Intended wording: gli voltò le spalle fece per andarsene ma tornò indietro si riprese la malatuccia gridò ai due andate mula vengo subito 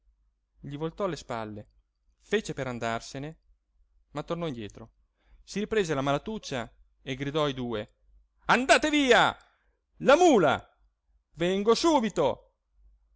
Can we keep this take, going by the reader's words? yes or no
no